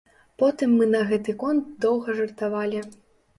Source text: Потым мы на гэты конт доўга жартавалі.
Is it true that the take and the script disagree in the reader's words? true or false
false